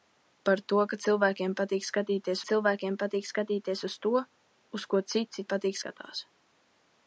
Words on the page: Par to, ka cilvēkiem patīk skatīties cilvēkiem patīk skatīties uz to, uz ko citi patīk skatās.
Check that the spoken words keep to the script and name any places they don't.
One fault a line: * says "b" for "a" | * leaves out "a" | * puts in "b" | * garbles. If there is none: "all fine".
all fine